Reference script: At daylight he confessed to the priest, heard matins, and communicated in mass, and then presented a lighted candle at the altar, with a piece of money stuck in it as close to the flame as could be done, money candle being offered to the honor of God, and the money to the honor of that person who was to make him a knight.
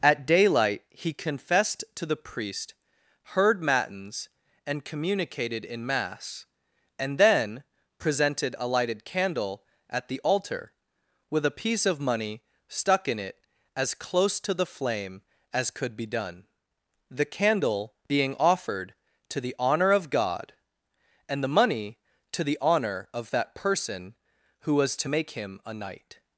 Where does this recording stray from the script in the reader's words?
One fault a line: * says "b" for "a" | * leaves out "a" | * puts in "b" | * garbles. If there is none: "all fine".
* says "the" for "money"